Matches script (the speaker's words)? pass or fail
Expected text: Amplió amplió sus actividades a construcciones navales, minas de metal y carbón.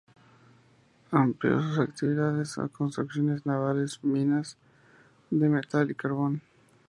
fail